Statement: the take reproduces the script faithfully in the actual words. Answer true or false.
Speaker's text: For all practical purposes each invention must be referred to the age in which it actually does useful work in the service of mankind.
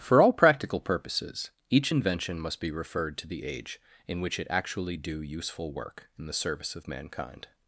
false